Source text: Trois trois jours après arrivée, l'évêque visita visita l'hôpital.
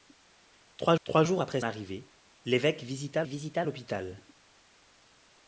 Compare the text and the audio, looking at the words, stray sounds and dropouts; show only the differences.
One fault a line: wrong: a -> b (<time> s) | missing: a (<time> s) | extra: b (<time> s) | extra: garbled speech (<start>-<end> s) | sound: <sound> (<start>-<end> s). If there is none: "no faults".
no faults